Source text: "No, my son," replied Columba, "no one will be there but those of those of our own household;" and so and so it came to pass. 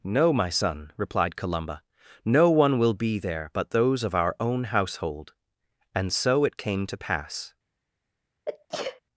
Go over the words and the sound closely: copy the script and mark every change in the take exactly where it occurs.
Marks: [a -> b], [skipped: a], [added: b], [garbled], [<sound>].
"No, my son," replied Columba, "no one will be there but those of [skipped: those of] our own household;" and so [skipped: and so] it came to pass. [sneeze]